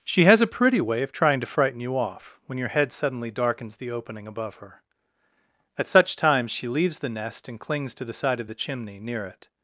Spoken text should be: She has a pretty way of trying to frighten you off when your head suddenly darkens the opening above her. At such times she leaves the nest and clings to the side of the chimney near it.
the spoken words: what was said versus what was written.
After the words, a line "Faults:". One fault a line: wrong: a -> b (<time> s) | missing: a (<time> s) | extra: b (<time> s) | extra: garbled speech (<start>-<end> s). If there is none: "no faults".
She has a pretty way of trying to frighten you off when your head suddenly darkens the opening above her. At such times she leaves the nest and clings to the side of the chimney near it.
Faults:
no faults